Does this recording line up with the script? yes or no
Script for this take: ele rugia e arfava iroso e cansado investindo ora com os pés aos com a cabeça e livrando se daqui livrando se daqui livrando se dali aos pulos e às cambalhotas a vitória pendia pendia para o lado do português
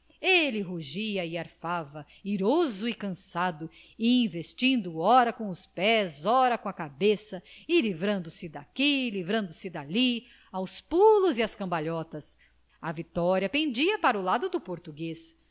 no